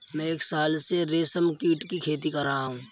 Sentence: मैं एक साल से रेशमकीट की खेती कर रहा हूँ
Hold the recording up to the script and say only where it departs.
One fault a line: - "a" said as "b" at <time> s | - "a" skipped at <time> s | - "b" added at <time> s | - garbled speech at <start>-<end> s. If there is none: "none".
none